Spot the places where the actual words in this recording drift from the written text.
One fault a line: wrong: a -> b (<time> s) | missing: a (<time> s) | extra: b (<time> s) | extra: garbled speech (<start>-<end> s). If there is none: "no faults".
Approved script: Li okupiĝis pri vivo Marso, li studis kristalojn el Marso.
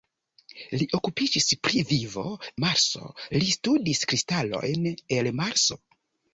no faults